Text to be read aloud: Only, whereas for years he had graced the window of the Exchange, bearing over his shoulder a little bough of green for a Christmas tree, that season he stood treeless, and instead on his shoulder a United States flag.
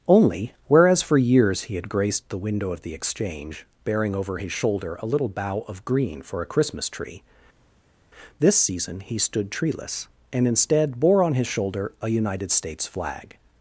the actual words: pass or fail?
fail